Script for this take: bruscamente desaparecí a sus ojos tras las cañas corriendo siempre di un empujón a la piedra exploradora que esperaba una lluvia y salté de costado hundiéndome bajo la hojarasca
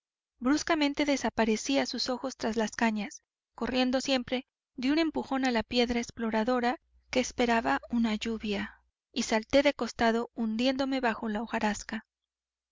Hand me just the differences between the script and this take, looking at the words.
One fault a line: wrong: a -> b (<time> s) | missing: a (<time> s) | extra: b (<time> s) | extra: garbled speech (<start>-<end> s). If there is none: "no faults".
no faults